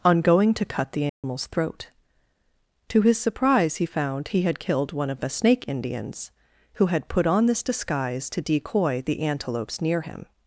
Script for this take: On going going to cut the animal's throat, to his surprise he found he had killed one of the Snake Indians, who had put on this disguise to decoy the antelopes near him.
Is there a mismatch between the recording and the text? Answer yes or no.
yes